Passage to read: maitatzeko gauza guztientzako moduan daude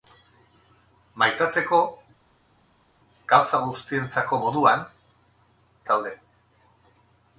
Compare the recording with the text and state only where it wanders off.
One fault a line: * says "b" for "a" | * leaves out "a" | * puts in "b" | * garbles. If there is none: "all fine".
all fine